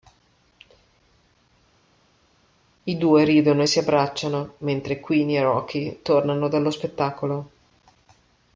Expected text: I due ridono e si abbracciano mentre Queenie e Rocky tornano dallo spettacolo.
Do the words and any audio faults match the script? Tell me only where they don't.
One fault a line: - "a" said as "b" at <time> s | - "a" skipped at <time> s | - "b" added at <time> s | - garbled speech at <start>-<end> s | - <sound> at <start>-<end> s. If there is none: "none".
none